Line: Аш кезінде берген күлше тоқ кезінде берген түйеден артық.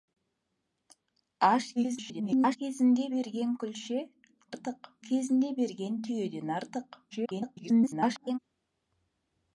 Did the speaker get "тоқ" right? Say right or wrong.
wrong